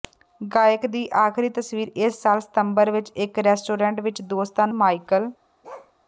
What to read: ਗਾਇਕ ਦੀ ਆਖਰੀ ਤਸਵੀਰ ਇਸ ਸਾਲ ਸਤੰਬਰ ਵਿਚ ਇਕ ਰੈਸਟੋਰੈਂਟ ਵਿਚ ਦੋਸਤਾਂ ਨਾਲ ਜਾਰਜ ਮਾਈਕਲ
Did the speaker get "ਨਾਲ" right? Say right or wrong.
wrong